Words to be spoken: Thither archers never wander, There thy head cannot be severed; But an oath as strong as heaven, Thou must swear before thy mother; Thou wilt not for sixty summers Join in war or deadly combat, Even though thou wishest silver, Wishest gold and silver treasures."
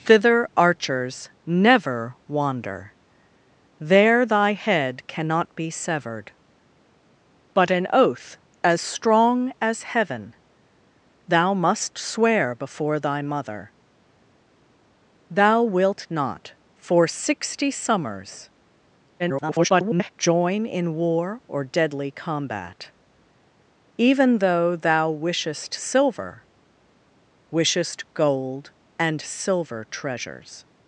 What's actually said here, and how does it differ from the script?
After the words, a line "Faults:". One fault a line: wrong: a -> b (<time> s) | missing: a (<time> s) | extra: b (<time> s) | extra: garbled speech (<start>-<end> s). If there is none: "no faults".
Thither archers never wander, There thy head cannot be severed; But an oath as strong as heaven, Thou must swear before thy mother; Thou wilt not for sixty summers [garbled] Join in war or deadly combat, Even though thou wishest silver, Wishest gold and silver treasures."
Faults:
extra: garbled speech (19.2-20.1 s)